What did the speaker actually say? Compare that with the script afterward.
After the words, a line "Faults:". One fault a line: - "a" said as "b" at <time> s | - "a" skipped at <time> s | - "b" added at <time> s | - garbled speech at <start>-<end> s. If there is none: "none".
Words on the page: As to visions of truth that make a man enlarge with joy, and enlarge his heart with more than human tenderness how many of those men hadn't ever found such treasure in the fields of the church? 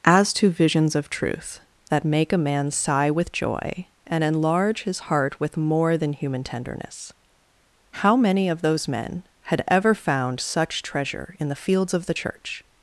As to visions of truth that make a man sigh with joy, and enlarge his heart with more than human tenderness how many of those men had ever found such treasure in the fields of the church?
Faults:
- "enlarge" said as "sigh" at 2.7 s
- "hadn't" said as "had" at 9.4 s